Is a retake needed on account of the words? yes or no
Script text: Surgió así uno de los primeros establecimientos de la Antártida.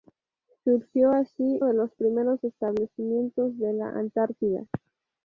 yes